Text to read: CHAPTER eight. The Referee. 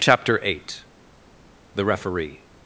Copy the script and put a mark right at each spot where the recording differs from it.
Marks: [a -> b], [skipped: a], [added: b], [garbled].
CHAPTER eight. The Referee.